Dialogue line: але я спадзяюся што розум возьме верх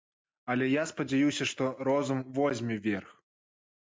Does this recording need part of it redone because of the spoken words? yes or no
no